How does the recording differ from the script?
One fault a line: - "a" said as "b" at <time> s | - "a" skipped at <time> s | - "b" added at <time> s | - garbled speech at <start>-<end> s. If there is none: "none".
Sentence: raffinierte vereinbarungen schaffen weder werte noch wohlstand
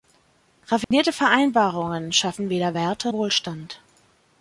- "noch" skipped at 3.1 s